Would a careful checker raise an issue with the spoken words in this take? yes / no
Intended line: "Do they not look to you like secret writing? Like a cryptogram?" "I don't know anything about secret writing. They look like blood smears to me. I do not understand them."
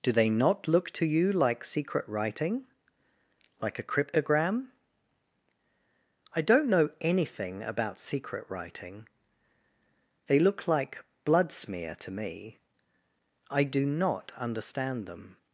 yes